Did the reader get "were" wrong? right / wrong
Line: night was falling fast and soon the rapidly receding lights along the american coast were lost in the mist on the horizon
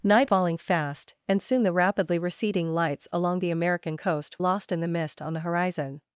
wrong